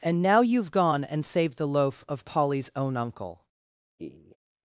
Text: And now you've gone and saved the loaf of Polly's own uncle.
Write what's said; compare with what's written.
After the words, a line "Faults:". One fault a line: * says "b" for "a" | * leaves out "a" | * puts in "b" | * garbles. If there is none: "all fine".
And now you've gone and saved the loaf of Polly's own uncle.
Faults:
all fine